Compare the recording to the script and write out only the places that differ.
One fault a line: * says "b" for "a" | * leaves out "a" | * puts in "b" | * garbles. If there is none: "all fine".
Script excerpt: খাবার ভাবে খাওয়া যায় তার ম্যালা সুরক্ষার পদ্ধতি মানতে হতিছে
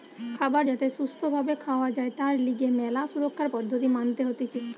* puts in "যাতে সুস্থ"
* puts in "লিগে"